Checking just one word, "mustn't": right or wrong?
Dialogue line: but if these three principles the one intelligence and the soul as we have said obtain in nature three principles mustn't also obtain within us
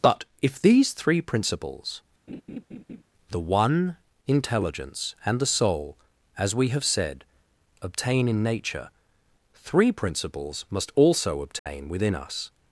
wrong